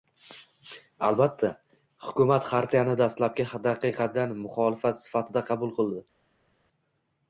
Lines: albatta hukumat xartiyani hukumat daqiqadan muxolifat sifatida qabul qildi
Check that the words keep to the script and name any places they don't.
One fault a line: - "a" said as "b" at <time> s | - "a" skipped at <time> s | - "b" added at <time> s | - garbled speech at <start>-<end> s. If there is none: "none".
- "hukumat" said as "dastlabki" at 3.0 s